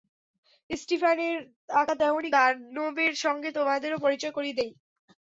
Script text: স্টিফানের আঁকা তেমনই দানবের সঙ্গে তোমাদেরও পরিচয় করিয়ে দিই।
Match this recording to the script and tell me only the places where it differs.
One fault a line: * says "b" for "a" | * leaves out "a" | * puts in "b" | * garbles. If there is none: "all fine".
all fine